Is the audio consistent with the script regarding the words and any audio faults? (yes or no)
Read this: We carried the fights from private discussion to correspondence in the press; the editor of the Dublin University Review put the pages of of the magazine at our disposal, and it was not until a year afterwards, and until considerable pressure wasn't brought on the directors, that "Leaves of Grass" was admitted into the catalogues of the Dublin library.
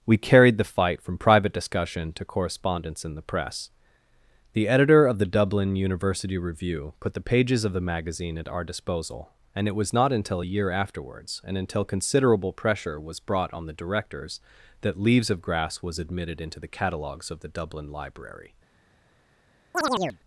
no